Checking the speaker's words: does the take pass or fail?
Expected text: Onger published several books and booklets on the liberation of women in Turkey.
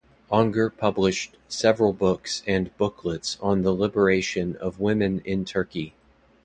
pass